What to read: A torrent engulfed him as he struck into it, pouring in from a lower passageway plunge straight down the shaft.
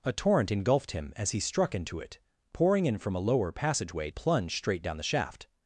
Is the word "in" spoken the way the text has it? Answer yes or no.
yes